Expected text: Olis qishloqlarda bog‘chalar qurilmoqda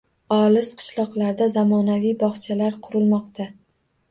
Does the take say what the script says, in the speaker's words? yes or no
no